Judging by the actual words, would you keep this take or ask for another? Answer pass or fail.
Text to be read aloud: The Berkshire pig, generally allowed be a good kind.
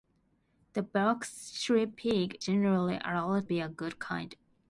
pass